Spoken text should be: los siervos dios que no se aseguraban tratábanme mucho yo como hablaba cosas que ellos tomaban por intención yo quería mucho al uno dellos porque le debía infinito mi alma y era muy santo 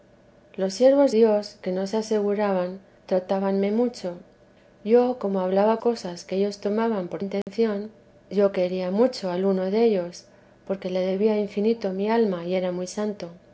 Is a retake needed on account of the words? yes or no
no